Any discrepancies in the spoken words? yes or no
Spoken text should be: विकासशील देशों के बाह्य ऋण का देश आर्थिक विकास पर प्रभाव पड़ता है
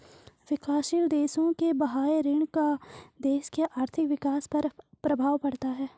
yes